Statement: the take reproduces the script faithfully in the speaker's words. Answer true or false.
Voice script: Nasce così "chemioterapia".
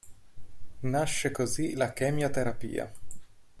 false